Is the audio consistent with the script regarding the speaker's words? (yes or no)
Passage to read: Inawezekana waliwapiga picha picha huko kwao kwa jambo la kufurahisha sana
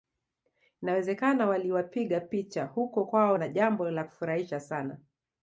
no